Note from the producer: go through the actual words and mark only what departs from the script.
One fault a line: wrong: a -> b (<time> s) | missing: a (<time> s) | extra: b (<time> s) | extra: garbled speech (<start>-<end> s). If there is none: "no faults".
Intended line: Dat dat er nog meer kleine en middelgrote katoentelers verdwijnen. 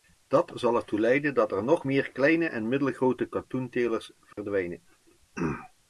extra: zal ertoe leiden (0.6 s)